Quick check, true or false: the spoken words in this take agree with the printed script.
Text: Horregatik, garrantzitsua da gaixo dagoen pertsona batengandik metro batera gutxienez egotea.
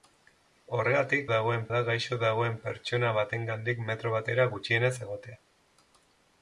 false